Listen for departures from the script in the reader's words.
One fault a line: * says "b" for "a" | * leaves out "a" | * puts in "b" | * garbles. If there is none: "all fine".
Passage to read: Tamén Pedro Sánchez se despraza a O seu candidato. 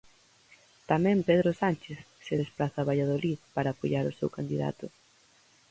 * puts in "Valladolid para apoiar"